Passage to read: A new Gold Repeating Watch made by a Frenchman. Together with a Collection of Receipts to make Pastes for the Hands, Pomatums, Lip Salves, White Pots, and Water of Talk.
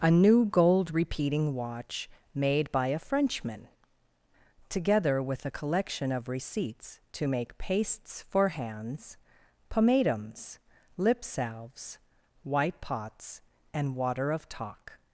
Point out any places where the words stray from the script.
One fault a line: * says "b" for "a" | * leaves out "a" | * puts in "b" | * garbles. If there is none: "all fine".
* leaves out "the"